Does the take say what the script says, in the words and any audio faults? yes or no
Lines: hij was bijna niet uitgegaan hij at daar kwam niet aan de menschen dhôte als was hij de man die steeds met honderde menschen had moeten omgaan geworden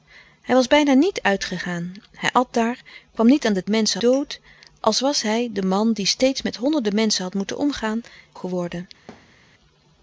no